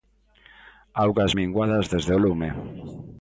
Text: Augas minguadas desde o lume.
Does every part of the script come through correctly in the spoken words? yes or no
yes